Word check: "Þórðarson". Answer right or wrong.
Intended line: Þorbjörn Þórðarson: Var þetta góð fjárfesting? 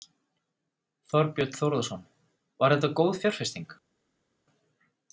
right